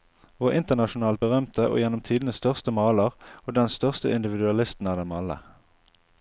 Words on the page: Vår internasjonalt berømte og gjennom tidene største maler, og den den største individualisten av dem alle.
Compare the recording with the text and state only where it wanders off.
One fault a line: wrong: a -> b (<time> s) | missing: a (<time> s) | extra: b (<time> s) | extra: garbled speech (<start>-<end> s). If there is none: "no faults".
missing: den (3.7 s)